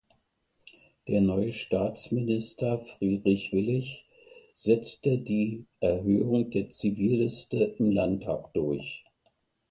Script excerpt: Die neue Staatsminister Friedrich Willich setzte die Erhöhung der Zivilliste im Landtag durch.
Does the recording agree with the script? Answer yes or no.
no